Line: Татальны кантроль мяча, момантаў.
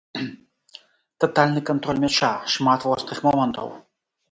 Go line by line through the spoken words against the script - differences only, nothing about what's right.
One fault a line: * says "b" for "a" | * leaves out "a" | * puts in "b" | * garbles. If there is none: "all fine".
* puts in "шмат вострых"